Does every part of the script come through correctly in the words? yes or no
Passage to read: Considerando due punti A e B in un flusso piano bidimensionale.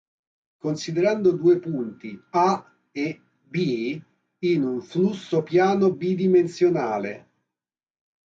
yes